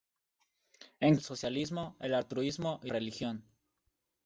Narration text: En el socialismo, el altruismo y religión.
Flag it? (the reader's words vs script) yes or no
no